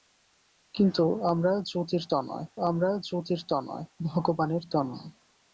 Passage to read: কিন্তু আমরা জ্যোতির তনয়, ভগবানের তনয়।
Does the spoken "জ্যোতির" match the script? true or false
true